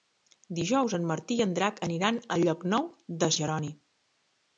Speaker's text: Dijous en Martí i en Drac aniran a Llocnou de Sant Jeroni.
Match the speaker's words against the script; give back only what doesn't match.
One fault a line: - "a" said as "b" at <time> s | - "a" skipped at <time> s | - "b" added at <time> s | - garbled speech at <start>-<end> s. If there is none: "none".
- "Sant" skipped at 3.3 s